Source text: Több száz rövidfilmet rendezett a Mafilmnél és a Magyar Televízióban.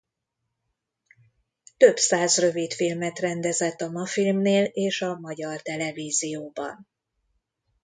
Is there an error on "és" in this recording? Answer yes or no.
no